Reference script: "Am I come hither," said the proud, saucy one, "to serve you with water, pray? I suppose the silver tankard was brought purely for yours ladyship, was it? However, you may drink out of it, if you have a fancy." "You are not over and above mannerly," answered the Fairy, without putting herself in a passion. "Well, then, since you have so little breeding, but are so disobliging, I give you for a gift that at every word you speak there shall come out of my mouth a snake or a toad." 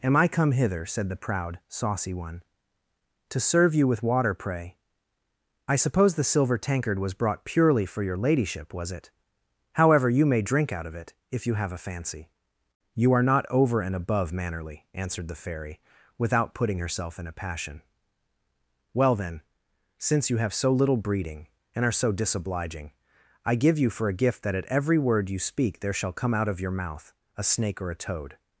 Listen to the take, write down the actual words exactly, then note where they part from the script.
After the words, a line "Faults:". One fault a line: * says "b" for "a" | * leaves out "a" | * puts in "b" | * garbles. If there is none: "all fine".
"Am I come hither," said the proud, saucy one, "to serve you with water, pray? I suppose the silver tankard was brought purely for your ladyship, was it? However, you may drink out of it, if you have a fancy." "You are not over and above mannerly," answered the Fairy, without putting herself in a passion. "Well, then, since you have so little breeding, and are so disobliging, I give you for a gift that at every word you speak there shall come out of your mouth a snake or a toad."
Faults:
* says "your" for "yours"
* says "and" for "but"
* says "your" for "my"